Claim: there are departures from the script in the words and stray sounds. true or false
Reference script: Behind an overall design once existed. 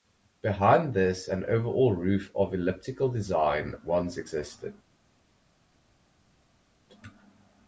true